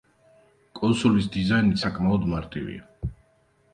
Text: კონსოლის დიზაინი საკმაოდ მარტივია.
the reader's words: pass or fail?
pass